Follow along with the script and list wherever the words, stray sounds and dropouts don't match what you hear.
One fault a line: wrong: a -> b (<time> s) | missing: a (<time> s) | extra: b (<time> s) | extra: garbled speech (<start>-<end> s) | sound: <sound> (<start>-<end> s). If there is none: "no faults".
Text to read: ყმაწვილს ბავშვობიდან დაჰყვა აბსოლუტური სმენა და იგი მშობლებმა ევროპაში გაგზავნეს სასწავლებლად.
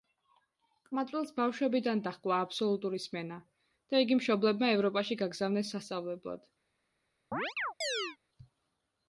sound: chirp (7.3-8.2 s)